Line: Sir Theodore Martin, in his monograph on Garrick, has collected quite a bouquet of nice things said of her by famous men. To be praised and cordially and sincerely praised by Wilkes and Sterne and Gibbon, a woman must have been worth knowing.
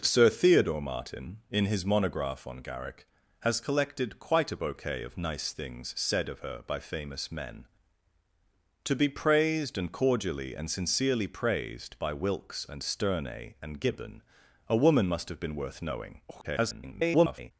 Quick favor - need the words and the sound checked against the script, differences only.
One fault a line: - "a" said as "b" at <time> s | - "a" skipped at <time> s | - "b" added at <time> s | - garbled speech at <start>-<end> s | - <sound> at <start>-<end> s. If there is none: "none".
- garbled speech at 16.3-17.5 s